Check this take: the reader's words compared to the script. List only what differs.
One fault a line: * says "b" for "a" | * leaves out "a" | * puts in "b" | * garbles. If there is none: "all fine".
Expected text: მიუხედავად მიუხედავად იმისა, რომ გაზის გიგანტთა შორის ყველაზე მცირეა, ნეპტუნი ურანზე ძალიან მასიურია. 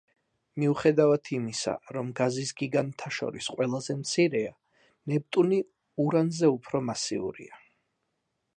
* leaves out "მიუხედავად"
* says "უფრო" for "ძალიან"